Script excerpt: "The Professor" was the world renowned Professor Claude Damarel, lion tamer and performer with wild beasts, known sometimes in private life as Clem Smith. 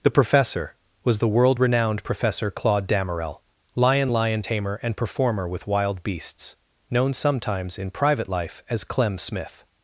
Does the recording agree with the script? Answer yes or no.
no